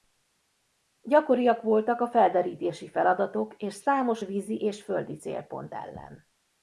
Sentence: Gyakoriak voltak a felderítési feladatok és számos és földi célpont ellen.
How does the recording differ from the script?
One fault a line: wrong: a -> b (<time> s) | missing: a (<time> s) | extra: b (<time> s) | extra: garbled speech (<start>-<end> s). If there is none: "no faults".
extra: vízi (4.2 s)